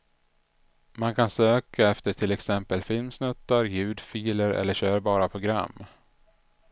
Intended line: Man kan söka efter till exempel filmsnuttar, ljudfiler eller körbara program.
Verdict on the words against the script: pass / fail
pass